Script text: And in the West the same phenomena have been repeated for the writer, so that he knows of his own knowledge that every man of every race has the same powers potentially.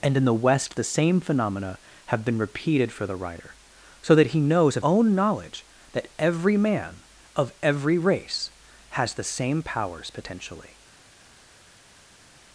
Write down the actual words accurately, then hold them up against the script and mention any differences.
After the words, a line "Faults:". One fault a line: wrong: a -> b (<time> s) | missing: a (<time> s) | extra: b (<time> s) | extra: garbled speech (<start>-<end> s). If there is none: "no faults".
And in the West the same phenomena have been repeated for the writer, so that he knows of own knowledge that every man of every race has the same powers potentially.
Faults:
missing: his (4.8 s)